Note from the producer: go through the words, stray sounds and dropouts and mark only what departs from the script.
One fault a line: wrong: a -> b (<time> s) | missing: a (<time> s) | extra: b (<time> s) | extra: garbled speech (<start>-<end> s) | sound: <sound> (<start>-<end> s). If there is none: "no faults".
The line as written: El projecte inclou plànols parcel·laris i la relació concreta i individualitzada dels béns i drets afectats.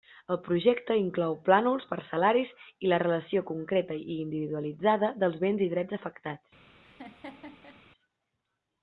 sound: laugh (6.8-7.8 s)